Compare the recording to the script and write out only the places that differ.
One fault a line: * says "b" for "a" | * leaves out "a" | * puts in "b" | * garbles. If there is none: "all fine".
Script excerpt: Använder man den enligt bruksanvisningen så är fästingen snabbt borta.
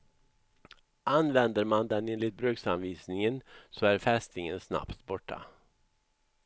all fine